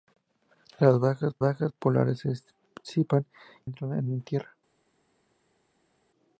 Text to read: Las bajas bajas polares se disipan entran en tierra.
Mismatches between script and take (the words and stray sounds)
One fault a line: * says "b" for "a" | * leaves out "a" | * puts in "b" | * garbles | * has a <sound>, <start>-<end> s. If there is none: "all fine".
all fine